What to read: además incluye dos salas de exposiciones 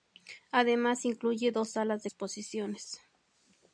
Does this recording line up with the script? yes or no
yes